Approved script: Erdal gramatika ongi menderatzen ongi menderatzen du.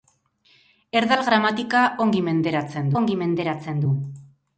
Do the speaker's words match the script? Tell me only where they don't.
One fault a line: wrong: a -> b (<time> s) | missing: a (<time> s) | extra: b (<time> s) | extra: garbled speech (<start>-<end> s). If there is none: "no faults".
no faults